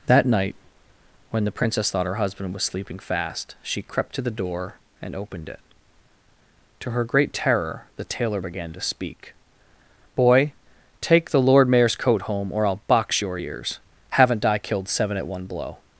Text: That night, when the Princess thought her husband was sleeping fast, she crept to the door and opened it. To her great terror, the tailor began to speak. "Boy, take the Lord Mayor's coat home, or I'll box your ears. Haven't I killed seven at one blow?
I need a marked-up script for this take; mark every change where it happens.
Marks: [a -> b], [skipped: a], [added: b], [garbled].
That night, when the Princess thought her husband was sleeping fast, she crept to the door and opened it. To her great terror, the tailor began to speak. "Boy, take the Lord Mayor's coat home, or I'll box your ears. Haven't I killed seven at one blow?